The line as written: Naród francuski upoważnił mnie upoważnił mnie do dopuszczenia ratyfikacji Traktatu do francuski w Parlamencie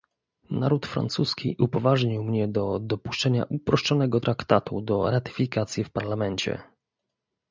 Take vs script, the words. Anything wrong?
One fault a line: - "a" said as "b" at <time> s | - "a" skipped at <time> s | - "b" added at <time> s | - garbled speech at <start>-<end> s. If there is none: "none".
- "upoważnił mnie" skipped at 2.5 s
- "ratyfikacji" said as "uproszczonego" at 3.5 s
- "francuski" said as "ratyfikacji" at 5.1 s